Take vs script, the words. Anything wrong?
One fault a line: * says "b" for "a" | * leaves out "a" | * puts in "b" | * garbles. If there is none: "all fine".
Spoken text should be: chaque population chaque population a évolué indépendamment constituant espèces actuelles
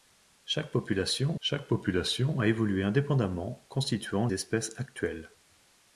all fine